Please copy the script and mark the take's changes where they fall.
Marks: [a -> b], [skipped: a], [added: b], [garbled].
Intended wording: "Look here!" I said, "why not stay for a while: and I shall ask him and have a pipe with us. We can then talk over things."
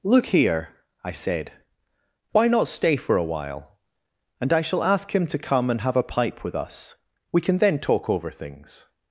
"Look here!" I said, "why not stay for a while: and I shall ask him [added: to come] and have a pipe with us. We can then talk over things."